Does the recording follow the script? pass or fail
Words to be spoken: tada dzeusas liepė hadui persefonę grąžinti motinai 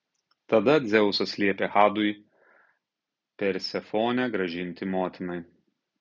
pass